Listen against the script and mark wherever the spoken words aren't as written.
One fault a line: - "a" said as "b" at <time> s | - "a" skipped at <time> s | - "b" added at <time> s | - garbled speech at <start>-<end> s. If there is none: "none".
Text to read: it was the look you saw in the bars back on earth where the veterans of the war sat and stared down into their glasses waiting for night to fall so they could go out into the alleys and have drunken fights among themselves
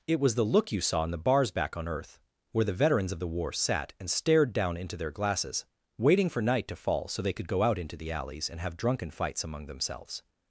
none